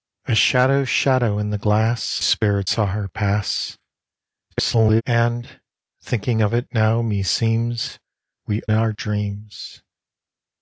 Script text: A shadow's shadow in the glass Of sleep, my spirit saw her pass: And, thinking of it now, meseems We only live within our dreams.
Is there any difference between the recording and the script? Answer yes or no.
yes